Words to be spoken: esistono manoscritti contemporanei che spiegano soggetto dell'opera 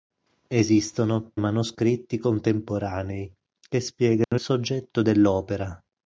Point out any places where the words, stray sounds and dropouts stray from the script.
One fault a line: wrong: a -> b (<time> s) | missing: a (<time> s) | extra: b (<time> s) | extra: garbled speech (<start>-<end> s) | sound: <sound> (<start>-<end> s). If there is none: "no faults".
sound: dropout (4.2-4.3 s)